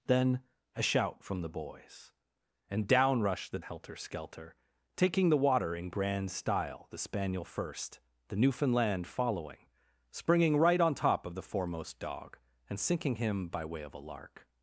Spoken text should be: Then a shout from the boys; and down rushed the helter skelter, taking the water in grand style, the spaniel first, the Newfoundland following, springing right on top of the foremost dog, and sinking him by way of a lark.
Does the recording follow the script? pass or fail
pass